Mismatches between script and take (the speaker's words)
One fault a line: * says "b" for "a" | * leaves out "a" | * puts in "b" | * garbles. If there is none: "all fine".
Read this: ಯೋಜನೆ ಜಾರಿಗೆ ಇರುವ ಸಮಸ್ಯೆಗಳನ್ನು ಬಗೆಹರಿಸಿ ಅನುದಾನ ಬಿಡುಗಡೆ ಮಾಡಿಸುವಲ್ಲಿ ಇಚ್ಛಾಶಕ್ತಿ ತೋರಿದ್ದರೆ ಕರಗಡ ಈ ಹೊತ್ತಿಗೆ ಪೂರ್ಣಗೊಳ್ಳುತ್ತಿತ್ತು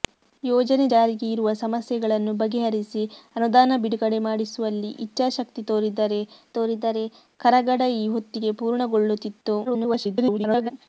* puts in "ತೋರಿದ್ದರೆ"
* garbles